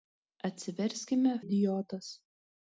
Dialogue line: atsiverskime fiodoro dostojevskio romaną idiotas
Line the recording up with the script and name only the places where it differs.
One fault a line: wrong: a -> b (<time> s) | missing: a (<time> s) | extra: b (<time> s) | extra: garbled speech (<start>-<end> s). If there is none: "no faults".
missing: fiodoro dostojevskio romaną (1.3 s)